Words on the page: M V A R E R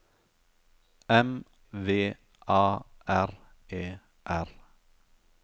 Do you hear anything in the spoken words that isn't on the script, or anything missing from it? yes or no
no